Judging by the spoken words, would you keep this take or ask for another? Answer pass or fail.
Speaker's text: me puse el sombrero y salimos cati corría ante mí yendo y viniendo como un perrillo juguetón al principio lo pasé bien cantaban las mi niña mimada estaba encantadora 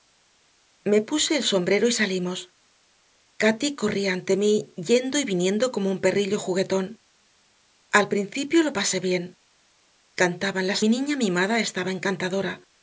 pass